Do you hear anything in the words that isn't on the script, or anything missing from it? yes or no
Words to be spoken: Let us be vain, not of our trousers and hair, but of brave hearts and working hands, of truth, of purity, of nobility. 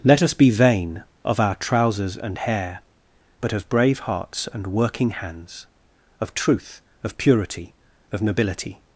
yes